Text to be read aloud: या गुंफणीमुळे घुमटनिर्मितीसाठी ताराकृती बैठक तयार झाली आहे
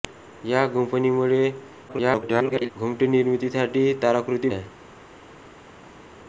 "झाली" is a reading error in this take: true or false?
true